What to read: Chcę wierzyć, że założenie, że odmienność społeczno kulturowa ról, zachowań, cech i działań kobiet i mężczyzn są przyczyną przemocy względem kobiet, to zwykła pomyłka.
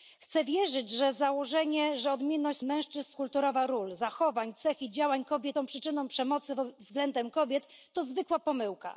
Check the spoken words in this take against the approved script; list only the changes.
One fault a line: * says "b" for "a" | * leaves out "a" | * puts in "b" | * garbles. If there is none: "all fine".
* says "mężczyzn" for "społeczno"
* leaves out "i mężczyzn"